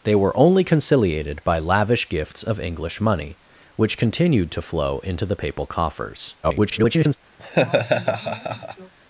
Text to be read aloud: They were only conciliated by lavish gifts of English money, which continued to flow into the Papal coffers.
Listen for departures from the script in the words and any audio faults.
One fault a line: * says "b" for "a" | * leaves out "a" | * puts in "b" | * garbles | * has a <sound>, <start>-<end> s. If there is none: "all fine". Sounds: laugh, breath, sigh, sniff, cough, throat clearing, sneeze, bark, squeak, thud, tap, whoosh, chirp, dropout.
* garbles
* has a laugh, 7.4-8.9 s